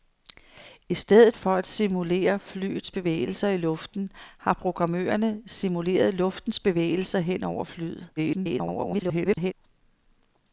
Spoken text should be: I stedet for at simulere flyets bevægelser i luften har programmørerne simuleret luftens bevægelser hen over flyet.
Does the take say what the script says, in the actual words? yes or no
no